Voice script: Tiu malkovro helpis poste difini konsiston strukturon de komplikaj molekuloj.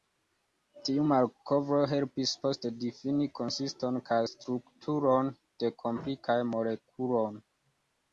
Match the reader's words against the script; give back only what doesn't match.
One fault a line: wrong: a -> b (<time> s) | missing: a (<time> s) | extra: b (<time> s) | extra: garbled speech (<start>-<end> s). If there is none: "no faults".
extra: kaj (4.1 s)